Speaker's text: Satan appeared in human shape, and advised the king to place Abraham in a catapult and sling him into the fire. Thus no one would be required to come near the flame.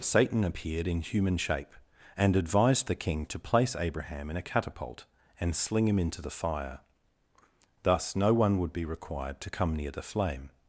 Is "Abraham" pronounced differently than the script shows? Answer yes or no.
no